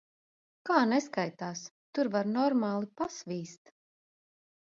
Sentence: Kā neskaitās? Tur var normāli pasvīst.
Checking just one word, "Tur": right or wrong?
right